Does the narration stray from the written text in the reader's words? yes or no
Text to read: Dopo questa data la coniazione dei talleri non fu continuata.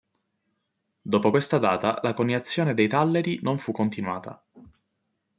no